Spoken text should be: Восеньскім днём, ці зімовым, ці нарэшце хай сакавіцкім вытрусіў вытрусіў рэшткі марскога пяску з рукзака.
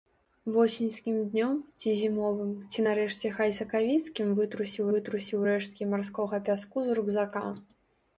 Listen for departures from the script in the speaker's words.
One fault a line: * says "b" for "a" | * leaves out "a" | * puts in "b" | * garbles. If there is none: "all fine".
all fine